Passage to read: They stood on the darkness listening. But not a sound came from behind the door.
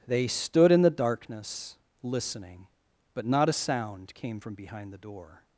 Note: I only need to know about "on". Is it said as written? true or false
false